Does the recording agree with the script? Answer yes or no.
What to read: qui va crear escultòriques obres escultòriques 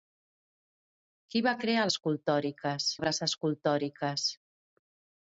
yes